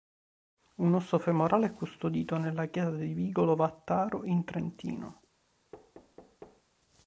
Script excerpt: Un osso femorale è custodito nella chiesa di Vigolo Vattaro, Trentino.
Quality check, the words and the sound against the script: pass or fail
fail